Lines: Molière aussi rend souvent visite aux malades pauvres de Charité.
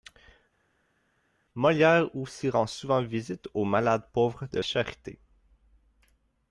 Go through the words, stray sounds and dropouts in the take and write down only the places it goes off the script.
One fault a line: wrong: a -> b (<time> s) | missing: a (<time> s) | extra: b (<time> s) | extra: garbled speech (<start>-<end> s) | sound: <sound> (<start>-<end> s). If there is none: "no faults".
no faults